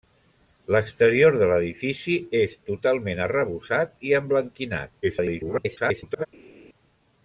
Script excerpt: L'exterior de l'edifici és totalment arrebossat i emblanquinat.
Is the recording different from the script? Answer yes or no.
yes